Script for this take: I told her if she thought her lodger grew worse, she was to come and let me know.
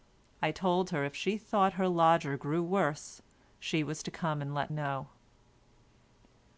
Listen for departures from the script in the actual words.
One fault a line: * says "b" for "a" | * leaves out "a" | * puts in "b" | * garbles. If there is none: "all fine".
* leaves out "me"